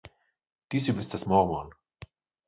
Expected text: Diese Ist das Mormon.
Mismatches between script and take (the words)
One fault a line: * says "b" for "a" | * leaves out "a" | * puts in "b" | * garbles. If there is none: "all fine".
all fine